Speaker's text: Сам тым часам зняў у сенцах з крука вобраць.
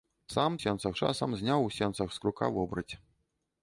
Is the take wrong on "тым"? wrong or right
wrong